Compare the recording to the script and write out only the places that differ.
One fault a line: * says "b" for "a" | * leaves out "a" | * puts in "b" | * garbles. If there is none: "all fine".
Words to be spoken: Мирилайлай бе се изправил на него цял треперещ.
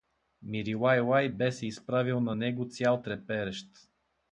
all fine